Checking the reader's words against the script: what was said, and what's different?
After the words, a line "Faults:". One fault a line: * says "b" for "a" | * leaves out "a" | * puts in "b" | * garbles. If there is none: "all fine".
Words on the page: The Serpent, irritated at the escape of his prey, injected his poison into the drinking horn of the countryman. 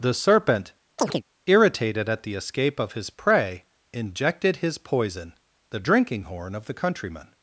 The Serpent, irritated at the escape of his prey, injected his poison the drinking horn of the countryman.
Faults:
* leaves out "into"